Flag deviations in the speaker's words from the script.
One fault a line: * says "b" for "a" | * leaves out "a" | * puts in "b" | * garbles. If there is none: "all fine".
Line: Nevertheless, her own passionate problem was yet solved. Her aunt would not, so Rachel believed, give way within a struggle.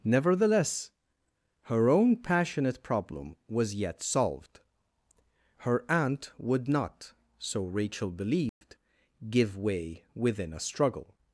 all fine